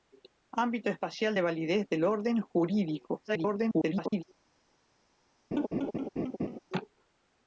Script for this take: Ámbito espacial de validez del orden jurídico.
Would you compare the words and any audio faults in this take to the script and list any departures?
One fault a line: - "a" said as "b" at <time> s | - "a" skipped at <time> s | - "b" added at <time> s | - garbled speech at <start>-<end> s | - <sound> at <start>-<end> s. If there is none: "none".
- garbled speech at 3.3-4.2 s
- laugh at 5.5-6.6 s